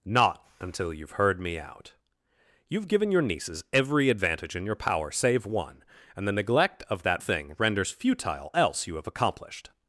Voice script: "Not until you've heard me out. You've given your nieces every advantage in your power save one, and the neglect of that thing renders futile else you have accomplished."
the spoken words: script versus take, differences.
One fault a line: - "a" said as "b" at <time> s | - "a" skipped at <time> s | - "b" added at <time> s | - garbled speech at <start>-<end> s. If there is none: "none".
none